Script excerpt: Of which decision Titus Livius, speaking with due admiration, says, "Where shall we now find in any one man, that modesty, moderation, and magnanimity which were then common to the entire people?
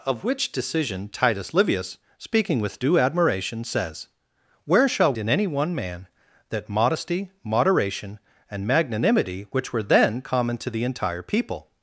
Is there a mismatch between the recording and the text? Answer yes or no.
yes